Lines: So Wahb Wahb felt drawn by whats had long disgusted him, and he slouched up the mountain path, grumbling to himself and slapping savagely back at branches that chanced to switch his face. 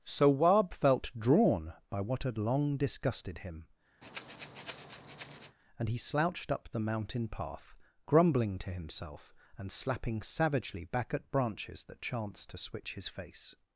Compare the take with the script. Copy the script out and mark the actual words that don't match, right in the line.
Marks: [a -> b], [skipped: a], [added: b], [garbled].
So Wahb [skipped: Wahb] felt drawn by [whats -> what] had long disgusted him, and he slouched up the mountain path, grumbling to himself and slapping savagely back at branches that chanced to switch his face.